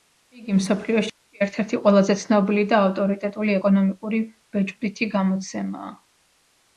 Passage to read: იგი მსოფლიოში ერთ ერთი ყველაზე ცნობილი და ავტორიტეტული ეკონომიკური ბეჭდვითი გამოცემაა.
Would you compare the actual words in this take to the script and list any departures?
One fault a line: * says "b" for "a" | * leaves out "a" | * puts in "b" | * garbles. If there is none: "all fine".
all fine